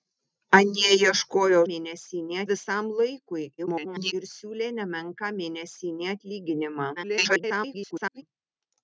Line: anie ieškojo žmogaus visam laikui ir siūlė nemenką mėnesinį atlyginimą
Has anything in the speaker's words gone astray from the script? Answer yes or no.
yes